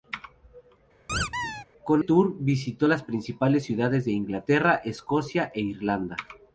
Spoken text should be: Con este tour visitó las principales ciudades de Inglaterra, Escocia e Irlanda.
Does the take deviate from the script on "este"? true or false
true